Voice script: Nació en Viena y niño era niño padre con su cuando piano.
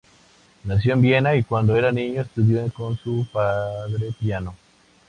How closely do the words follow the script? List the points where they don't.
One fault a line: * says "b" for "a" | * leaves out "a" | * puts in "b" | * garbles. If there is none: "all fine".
* says "cuando" for "niño"
* says "estudió" for "padre"
* says "padre" for "cuando"